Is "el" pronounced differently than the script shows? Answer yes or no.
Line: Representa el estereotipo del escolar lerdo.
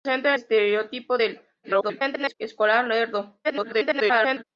yes